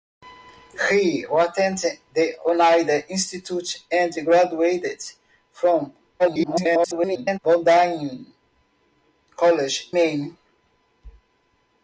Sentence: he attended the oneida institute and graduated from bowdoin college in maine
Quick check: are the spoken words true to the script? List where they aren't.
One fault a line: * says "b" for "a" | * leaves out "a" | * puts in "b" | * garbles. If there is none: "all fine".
* garbles
* leaves out "in"